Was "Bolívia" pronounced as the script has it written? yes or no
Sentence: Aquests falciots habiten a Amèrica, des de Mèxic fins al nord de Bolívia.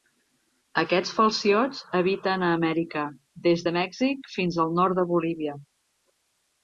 yes